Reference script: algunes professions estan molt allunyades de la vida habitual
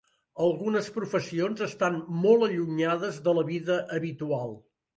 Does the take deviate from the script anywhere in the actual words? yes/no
no